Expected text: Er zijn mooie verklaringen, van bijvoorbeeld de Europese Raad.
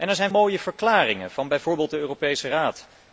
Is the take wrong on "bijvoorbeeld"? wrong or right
right